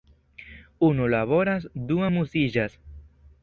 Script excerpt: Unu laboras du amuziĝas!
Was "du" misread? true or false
false